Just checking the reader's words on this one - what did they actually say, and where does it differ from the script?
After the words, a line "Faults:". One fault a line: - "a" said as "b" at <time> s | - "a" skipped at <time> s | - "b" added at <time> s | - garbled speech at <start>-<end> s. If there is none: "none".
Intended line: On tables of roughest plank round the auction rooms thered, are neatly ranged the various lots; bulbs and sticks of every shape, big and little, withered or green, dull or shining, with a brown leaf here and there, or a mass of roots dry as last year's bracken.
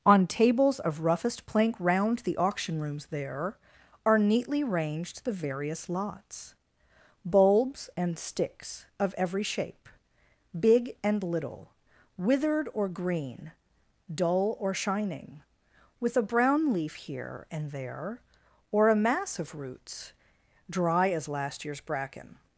On tables of roughest plank round the auction rooms there, are neatly ranged the various lots; bulbs and sticks of every shape, big and little, withered or green, dull or shining, with a brown leaf here and there, or a mass of roots dry as last year's bracken.
Faults:
- "thered" said as "there" at 3.1 s